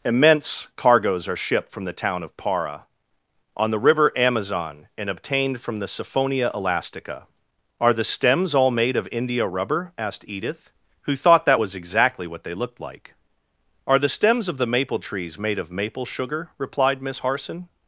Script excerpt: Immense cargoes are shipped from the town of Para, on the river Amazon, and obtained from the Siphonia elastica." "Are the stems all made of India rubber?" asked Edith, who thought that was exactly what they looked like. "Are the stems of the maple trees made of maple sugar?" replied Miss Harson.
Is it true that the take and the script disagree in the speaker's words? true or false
false